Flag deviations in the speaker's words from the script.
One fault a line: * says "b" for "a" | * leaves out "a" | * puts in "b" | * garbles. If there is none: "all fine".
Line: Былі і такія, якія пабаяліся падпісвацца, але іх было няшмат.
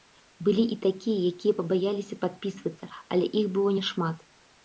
all fine